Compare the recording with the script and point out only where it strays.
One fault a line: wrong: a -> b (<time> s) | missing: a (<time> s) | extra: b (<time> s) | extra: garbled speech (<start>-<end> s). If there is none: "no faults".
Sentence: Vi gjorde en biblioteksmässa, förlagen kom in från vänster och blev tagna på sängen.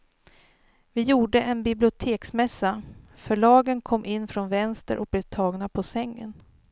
no faults